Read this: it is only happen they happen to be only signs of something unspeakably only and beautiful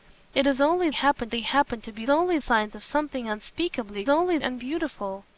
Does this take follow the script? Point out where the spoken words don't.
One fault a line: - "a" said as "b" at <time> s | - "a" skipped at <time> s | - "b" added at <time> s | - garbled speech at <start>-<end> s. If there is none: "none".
none